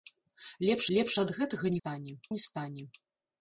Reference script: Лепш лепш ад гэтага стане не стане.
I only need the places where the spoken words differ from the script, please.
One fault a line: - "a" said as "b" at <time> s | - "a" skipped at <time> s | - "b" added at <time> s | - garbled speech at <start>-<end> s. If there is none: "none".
none